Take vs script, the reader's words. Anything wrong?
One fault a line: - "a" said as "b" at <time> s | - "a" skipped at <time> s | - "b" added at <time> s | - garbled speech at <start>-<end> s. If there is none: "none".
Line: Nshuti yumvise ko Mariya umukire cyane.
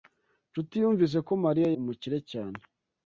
none